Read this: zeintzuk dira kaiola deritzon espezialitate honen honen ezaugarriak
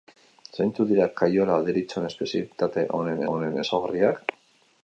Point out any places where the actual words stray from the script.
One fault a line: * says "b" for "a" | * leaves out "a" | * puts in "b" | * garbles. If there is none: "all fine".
all fine